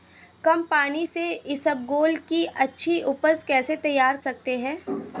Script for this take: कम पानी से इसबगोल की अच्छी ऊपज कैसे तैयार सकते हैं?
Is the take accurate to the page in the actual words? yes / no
yes